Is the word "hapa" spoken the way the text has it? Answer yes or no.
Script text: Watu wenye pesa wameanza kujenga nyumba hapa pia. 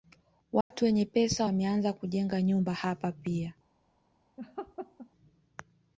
yes